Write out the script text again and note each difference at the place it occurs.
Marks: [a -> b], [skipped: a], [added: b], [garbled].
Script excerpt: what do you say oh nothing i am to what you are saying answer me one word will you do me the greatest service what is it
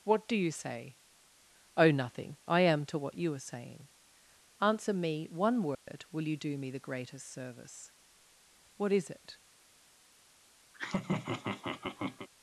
what do you say oh nothing i am to what you are saying answer me one word will you do me the greatest service what is it